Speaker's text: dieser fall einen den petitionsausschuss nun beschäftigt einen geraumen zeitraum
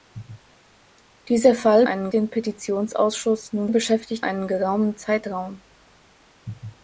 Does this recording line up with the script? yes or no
yes